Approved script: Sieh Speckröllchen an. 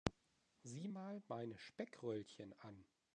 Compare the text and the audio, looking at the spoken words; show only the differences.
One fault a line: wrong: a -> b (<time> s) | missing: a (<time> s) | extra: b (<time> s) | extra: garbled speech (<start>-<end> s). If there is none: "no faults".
extra: mal meine (0.8 s)